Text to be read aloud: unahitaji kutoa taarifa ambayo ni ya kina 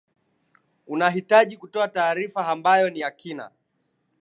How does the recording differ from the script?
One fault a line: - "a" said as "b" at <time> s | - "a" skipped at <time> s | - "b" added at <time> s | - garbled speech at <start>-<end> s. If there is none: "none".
none